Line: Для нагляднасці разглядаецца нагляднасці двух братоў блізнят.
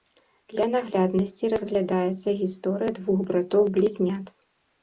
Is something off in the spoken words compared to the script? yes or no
yes